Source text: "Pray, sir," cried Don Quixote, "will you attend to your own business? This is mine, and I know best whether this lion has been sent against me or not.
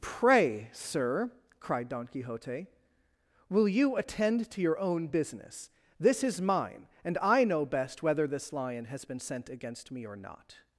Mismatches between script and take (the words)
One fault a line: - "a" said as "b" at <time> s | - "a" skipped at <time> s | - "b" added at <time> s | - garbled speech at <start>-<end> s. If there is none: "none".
none